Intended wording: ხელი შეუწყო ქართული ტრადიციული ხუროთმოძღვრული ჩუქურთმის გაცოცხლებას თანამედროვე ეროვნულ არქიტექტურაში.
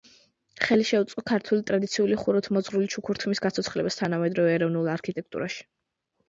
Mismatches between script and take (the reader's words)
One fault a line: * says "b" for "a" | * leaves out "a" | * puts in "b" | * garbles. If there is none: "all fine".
all fine